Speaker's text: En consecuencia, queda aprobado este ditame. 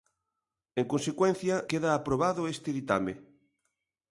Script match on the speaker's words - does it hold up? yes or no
yes